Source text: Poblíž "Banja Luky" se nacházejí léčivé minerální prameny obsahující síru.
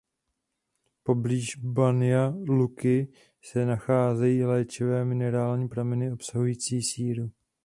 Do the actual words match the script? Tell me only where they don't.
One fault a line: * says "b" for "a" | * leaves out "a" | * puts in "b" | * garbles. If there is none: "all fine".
all fine